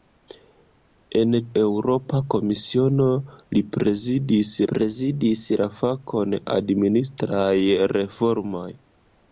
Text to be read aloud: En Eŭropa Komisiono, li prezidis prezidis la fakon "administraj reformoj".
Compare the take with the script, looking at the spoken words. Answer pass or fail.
pass